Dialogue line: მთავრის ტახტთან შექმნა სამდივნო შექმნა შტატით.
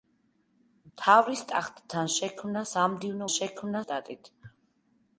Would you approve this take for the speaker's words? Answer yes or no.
yes